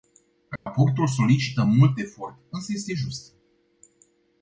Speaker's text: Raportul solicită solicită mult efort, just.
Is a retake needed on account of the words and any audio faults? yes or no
yes